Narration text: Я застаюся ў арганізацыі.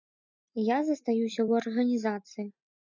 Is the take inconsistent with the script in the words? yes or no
no